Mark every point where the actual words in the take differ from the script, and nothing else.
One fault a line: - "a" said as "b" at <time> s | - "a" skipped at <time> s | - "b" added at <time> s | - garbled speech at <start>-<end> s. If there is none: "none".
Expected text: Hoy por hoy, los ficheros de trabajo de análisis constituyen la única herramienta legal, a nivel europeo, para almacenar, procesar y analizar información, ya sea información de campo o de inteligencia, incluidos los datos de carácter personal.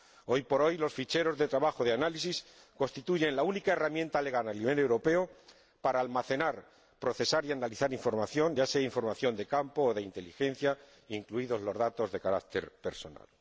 none